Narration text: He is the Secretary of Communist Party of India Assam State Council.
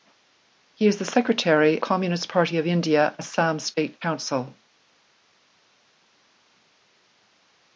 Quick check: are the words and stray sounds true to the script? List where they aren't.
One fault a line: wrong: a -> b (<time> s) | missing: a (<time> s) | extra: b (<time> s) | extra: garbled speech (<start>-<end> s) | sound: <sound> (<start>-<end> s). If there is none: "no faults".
missing: of (1.8 s)